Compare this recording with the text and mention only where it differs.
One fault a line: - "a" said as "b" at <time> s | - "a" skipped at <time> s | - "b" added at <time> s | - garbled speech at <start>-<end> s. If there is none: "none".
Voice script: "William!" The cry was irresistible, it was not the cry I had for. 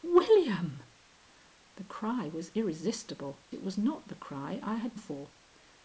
none